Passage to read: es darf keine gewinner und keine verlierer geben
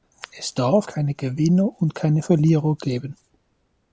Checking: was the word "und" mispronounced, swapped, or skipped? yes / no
no